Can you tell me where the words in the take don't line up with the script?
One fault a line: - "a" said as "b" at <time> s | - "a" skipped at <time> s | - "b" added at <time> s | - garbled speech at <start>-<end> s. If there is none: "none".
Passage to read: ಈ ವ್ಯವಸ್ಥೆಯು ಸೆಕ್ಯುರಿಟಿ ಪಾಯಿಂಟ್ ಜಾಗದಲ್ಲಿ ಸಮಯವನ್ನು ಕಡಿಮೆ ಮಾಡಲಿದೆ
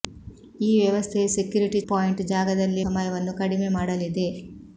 none